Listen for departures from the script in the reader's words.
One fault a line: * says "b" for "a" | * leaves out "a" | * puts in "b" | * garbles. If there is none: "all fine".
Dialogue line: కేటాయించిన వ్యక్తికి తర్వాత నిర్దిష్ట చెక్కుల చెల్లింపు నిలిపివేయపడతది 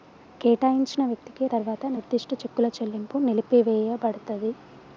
all fine